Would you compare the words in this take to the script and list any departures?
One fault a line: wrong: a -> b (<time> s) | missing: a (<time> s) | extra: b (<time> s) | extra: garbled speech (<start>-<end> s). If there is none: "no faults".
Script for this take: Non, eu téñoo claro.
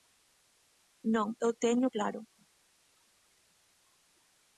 no faults